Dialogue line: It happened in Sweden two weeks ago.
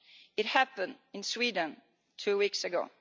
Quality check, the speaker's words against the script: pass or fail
pass